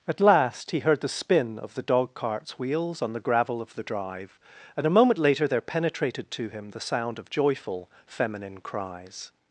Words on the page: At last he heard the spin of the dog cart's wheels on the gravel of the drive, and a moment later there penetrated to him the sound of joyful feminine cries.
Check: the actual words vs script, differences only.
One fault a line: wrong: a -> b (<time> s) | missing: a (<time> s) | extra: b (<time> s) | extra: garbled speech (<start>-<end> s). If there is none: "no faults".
no faults